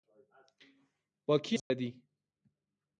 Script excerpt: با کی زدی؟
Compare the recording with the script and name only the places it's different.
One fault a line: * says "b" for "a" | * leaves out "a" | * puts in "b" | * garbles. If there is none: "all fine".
all fine